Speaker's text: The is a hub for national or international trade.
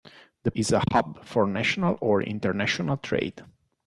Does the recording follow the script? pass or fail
pass